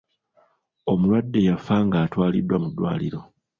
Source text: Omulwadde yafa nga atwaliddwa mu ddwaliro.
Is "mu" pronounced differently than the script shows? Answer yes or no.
no